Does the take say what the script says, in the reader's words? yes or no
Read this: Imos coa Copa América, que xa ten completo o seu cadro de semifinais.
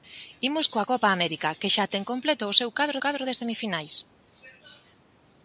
no